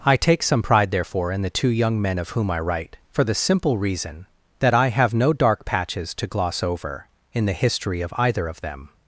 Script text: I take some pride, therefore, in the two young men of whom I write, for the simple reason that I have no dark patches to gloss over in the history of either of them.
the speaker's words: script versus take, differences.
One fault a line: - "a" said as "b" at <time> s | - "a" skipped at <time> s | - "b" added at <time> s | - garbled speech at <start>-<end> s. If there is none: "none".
none